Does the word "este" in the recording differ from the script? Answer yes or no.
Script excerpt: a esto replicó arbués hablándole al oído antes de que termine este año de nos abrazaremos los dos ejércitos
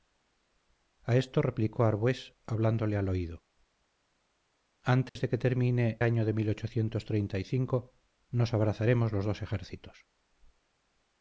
yes